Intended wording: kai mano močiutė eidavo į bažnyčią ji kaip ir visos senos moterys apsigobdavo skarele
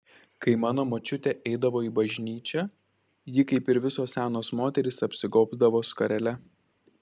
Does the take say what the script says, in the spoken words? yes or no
yes